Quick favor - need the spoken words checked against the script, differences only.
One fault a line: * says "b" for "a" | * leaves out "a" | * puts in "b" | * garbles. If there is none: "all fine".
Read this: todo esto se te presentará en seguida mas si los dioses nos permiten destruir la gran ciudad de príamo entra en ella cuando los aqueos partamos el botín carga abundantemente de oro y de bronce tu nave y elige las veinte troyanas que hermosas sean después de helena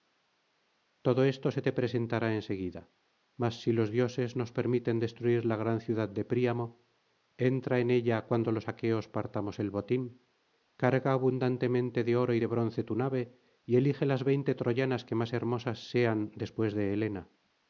* puts in "más"